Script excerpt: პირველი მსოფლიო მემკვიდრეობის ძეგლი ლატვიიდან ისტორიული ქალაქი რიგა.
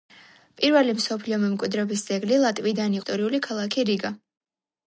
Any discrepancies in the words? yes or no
no